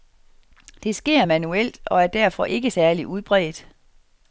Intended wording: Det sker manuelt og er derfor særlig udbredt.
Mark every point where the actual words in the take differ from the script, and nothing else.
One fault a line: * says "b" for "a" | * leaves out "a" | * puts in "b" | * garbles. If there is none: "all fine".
* puts in "ikke"